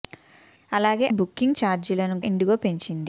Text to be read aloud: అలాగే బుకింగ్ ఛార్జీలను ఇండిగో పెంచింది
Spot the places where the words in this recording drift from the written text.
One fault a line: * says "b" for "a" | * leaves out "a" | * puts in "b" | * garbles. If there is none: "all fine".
all fine